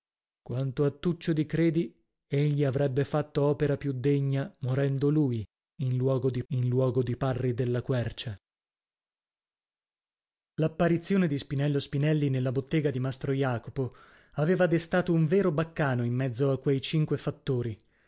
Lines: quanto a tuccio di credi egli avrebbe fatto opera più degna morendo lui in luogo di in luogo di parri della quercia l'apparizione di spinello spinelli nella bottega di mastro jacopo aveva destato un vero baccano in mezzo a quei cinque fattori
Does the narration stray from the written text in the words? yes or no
no